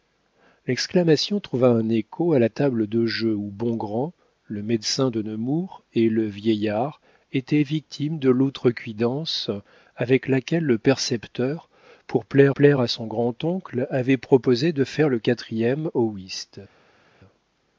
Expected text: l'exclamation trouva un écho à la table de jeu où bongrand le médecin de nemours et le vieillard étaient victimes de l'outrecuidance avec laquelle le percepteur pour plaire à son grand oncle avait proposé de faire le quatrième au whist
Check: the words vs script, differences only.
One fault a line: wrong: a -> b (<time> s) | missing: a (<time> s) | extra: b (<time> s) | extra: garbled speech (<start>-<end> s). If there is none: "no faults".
extra: plaire (12.5 s)